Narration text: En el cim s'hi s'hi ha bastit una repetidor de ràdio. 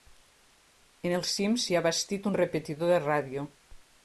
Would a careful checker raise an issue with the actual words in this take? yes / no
yes